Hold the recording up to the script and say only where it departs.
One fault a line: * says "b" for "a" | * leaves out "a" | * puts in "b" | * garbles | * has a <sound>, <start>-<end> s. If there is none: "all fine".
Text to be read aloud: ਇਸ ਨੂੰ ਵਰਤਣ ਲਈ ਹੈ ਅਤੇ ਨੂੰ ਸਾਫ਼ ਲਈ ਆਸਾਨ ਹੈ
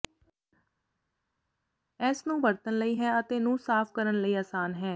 * puts in "ਕਰਨ"